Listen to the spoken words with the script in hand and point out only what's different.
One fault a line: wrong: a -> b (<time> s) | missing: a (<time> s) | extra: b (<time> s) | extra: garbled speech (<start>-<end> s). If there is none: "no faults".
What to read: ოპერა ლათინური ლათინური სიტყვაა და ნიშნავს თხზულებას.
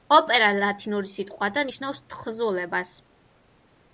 missing: ლათინური (1.1 s)